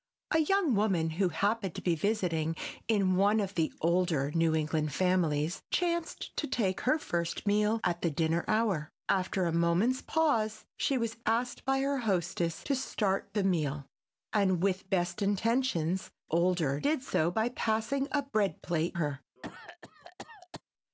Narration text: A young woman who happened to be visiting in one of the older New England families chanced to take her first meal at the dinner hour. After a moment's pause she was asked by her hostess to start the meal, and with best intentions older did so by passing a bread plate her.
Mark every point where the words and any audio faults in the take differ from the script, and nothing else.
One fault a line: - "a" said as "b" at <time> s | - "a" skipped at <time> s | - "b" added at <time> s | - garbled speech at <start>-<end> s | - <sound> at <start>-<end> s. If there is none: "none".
- cough at 19.4-20.6 s